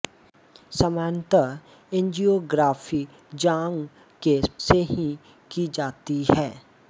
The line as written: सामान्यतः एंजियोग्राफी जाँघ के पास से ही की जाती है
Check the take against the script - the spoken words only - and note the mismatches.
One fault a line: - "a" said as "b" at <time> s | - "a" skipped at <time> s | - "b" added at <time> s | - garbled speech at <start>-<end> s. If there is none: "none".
- "पास" skipped at 4.4 s